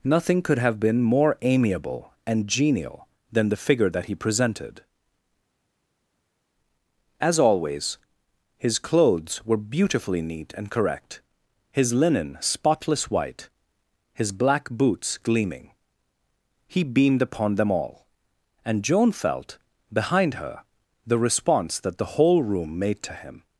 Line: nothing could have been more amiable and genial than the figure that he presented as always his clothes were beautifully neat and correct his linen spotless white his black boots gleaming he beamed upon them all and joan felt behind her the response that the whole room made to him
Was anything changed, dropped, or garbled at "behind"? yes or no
no